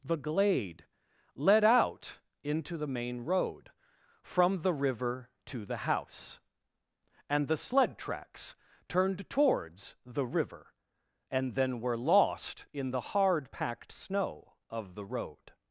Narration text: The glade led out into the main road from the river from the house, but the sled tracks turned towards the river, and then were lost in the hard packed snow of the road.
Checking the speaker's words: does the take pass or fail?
fail